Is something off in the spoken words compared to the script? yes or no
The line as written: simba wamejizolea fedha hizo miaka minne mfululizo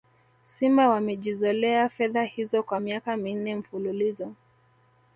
yes